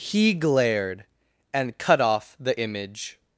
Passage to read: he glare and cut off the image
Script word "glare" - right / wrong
wrong